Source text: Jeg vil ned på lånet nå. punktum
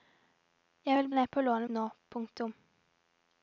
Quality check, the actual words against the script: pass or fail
pass